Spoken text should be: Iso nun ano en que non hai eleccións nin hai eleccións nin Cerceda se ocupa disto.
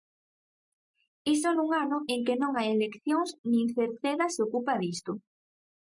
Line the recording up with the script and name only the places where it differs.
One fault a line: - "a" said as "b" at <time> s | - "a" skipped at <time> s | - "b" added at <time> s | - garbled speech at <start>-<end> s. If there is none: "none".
- "hai eleccións nin" skipped at 3.7 s